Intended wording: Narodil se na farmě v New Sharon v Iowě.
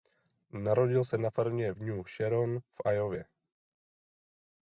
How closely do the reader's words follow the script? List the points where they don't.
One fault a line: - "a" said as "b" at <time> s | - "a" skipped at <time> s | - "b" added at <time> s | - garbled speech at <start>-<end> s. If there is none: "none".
none